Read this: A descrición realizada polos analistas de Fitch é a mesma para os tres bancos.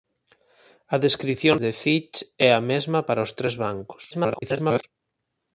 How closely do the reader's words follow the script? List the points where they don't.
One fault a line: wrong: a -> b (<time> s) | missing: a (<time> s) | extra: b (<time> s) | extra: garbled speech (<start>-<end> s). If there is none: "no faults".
missing: realizada polos analistas (1.6 s)
extra: garbled speech (4.1-4.8 s)